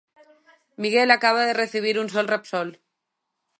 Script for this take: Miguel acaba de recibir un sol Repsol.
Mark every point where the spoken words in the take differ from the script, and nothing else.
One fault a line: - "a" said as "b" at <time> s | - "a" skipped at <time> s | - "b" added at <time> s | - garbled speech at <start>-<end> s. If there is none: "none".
none